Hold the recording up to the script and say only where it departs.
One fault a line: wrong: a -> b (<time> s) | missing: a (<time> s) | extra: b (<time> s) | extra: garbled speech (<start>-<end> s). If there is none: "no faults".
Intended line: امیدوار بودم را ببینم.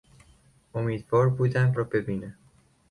no faults